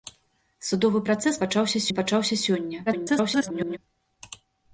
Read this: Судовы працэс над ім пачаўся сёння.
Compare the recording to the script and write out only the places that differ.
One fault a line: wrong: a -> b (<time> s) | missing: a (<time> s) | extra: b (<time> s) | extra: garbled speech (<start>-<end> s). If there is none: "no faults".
wrong: над -> пачаўся (1.4 s)
extra: garbled speech (2.9-3.8 s)